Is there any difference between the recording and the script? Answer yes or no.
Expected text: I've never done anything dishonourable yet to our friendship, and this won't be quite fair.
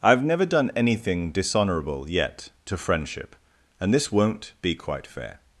yes